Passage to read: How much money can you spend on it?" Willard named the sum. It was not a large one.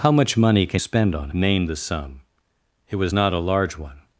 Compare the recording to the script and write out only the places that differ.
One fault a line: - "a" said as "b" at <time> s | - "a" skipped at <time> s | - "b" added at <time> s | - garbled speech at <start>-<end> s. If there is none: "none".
- "you" skipped at 0.8 s
- "it Willard" skipped at 1.3 s